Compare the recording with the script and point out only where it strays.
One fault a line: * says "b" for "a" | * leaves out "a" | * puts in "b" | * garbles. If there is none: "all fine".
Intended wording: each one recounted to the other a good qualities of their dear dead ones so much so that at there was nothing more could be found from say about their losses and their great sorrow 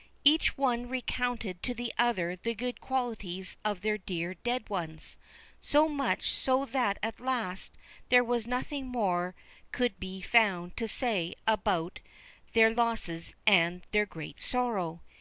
* says "the" for "a"
* puts in "last"
* says "to" for "from"